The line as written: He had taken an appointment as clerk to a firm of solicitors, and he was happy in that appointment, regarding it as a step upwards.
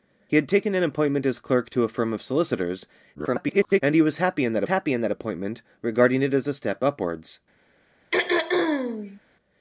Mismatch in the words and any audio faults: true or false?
true